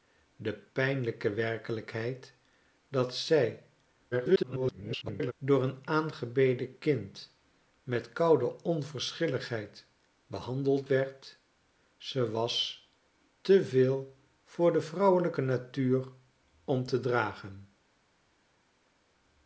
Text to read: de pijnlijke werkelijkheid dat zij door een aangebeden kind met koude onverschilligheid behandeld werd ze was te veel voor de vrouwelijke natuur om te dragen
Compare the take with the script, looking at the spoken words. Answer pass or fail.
fail